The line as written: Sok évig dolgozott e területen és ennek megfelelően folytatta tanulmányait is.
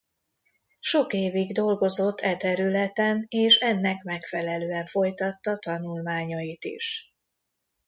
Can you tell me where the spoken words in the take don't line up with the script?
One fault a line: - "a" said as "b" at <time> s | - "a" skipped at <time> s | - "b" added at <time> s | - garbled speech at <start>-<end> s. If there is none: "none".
none